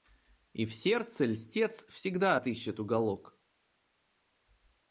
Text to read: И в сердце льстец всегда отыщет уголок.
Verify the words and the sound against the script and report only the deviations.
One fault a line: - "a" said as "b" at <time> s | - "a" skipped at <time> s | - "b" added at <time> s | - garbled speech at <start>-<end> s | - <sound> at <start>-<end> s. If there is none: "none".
none